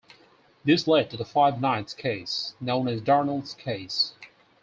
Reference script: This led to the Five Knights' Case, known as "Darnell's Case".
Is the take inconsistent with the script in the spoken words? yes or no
no